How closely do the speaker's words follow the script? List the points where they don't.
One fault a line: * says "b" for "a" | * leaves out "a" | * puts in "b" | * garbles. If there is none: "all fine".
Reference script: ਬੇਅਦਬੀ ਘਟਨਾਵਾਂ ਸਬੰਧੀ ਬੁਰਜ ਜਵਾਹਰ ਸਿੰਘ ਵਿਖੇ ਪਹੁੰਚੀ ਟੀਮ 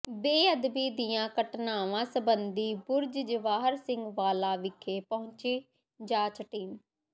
* puts in "ਦੀਆਂ"
* puts in "ਵਾਲਾ"
* puts in "ਜਾਂਚ"